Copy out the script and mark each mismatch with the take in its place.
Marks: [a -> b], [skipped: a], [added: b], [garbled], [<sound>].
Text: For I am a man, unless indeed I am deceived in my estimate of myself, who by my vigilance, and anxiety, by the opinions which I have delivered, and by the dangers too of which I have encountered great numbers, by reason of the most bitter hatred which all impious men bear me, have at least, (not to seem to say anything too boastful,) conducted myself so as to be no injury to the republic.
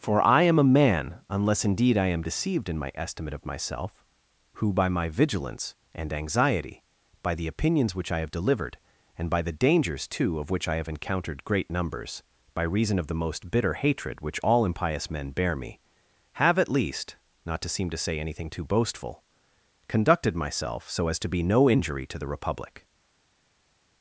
For I am a man, unless indeed I am deceived in my estimate of myself, who by my vigilance, and anxiety, by the opinions which I have delivered, and by the dangers too of which I have encountered great numbers, by reason of the most bitter hatred which all impious men bear me, have at least, (not to seem to say anything too boastful,) conducted myself so as to be no injury to the republic.